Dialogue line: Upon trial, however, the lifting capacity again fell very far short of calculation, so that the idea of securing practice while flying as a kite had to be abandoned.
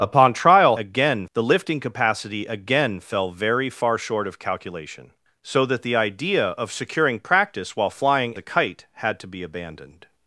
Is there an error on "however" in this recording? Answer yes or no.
yes